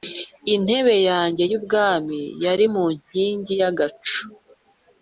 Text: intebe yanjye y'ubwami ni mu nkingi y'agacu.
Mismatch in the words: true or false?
true